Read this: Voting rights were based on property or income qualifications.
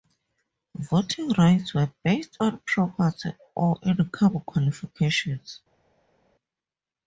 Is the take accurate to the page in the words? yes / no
yes